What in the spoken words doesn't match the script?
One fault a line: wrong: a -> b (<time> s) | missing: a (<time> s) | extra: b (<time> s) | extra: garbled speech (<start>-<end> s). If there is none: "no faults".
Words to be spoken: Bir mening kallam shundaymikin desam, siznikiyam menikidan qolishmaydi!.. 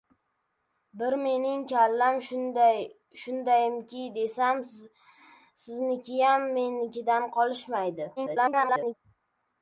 extra: garbled speech (8.2-8.9 s)